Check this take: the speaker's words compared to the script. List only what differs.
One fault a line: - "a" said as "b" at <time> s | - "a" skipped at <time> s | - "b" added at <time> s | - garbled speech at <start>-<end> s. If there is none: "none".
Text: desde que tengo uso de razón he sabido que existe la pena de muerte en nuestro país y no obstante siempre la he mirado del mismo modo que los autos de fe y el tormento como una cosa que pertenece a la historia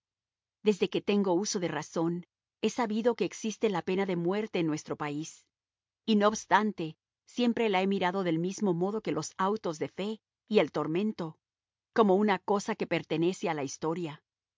none